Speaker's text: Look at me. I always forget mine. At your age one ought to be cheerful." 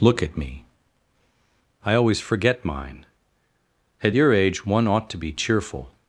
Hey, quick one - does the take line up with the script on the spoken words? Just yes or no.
yes